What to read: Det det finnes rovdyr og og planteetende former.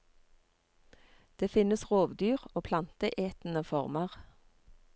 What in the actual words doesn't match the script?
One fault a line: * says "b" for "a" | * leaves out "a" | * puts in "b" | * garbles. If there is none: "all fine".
* leaves out "det"
* leaves out "og"